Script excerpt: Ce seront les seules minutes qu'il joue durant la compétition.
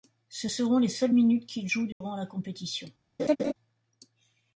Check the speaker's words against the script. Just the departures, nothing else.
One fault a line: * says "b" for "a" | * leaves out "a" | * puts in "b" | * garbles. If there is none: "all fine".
all fine